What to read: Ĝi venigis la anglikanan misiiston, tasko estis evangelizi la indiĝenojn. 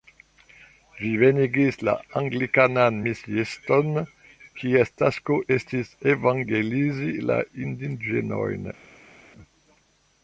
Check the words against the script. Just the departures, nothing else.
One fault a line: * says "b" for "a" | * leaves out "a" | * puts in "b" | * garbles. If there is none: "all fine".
* puts in "kies"